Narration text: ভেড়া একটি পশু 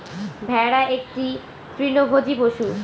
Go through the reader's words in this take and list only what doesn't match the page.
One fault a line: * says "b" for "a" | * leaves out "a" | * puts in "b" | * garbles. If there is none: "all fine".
* puts in "তৃণভোজী"